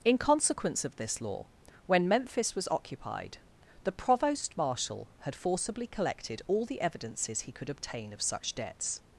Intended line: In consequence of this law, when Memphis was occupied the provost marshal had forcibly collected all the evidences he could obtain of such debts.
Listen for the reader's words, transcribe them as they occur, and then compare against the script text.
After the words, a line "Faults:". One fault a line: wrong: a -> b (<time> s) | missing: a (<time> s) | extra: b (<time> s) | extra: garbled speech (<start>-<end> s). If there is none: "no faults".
In consequence of this law, when Memphis was occupied the provost marshal had forcibly collected all the evidences he could obtain of such debts.
Faults:
no faults